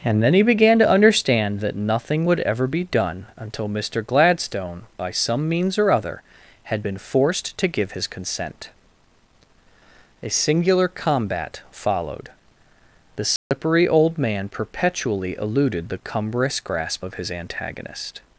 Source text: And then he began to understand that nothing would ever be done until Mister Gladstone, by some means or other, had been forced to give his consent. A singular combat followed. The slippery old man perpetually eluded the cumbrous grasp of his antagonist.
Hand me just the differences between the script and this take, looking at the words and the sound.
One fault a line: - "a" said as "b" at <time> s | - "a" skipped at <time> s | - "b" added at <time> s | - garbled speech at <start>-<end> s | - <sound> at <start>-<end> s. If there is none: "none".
- dropout at 13.4-13.5 s